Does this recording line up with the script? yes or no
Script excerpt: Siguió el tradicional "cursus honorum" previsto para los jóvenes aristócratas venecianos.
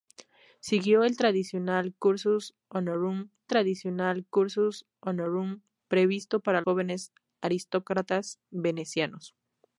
no